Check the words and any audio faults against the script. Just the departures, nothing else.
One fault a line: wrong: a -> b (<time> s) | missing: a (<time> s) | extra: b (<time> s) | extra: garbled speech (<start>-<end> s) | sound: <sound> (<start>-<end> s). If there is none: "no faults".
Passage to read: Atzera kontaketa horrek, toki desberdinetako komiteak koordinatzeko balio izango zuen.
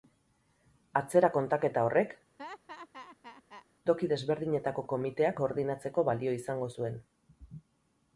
sound: laugh (2.4-3.7 s)